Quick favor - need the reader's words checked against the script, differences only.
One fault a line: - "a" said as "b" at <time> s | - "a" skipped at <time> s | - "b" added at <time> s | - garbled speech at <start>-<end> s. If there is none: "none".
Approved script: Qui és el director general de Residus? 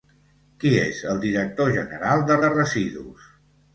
- "de" added at 2.5 s